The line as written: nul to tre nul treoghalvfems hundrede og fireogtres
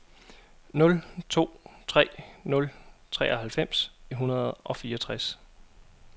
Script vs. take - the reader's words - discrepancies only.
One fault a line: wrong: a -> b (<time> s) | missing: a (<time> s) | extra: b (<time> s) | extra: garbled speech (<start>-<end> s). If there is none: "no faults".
no faults